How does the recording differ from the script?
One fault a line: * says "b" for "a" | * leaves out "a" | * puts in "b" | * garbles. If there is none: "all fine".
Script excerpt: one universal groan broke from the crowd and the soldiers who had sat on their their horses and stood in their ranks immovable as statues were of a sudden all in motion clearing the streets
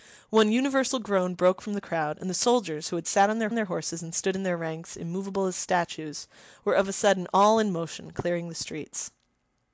all fine